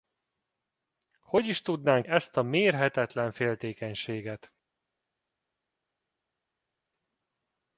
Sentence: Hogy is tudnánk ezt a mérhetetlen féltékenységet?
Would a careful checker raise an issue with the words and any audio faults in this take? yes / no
no